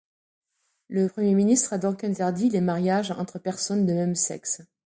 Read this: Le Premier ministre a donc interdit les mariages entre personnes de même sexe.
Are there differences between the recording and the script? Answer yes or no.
no